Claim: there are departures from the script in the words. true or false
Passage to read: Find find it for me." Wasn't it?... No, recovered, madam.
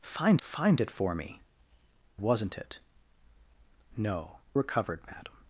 false